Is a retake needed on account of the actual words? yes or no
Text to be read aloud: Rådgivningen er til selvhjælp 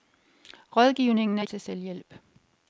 no